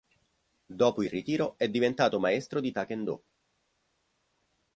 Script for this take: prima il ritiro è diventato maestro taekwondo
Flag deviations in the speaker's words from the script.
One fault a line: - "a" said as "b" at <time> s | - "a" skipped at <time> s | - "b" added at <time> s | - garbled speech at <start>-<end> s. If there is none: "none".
- "prima" said as "dopo" at 0.7 s
- "di" added at 2.6 s